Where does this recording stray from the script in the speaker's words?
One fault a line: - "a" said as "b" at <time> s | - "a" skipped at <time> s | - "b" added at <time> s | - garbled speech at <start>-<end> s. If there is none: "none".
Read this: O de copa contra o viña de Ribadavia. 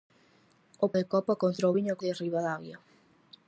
none